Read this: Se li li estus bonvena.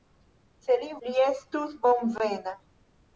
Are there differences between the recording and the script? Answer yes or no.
no